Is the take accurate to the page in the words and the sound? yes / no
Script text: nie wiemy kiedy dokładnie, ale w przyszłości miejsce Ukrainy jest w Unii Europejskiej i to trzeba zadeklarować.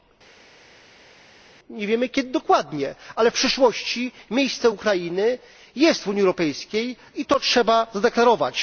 yes